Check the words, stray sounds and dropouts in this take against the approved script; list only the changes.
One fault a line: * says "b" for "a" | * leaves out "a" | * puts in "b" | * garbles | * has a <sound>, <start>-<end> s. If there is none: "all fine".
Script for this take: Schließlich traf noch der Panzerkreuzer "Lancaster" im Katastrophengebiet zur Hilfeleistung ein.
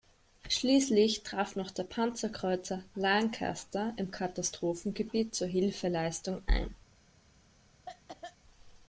* has a cough, 7.9-8.4 s